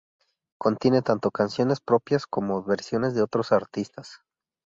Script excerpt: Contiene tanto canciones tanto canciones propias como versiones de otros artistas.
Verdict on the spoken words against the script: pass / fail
fail